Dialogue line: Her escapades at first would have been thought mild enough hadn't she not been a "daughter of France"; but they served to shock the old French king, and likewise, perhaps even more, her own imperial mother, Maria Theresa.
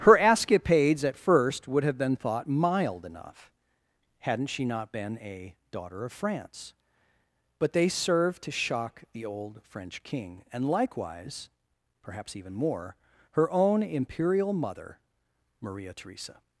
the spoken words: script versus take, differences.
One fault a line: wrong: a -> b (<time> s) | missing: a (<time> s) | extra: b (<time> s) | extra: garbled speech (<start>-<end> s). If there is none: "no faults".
no faults